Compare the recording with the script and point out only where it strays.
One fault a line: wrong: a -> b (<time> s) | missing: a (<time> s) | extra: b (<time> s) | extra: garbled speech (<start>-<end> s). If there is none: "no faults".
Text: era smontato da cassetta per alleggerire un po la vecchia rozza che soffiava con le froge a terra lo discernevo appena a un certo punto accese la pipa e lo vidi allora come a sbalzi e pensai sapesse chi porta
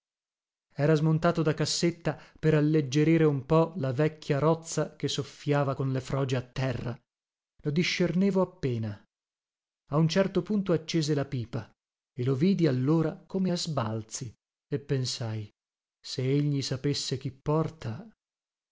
extra: se egli (16.0 s)